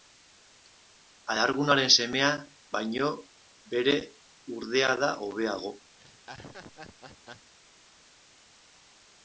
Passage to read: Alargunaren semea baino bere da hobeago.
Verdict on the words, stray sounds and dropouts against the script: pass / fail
fail